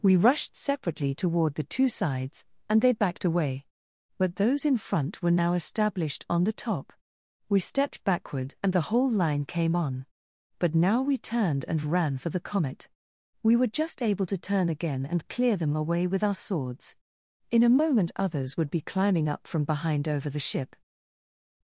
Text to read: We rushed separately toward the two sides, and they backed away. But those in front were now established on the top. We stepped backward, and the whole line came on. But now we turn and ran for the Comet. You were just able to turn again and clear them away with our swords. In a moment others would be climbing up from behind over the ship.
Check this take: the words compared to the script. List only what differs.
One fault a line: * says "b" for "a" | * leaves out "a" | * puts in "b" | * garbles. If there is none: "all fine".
* says "turned" for "turn"
* says "We" for "You"